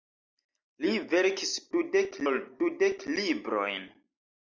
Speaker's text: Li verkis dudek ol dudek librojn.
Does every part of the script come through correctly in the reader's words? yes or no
yes